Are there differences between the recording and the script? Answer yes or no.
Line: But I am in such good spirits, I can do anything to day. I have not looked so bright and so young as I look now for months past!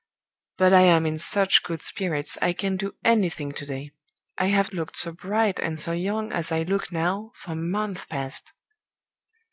yes